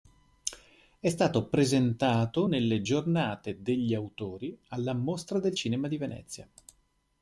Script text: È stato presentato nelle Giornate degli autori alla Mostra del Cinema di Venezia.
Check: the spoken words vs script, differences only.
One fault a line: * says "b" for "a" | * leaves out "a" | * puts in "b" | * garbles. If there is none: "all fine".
all fine